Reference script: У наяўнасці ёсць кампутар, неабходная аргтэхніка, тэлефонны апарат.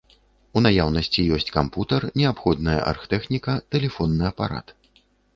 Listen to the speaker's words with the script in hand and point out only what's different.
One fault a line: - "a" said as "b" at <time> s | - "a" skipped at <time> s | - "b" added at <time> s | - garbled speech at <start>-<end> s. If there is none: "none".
none